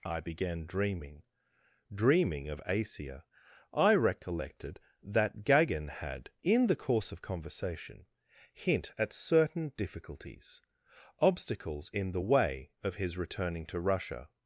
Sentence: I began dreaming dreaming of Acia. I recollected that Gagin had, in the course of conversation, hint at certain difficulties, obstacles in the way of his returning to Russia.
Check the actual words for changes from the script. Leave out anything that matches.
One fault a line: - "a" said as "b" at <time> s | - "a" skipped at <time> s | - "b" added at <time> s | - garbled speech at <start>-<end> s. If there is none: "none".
none